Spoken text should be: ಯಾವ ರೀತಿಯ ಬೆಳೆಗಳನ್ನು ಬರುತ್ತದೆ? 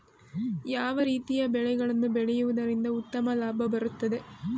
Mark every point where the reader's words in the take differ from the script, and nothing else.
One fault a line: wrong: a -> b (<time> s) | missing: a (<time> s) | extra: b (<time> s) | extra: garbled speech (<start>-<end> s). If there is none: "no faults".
extra: ಬೆಳೆಯುವುದರಿಂದ ಉತ್ತಮ ಲಾಭ (2.1 s)